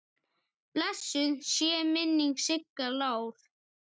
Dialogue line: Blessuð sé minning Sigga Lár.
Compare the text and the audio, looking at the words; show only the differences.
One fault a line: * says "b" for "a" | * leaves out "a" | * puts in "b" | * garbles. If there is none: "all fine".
all fine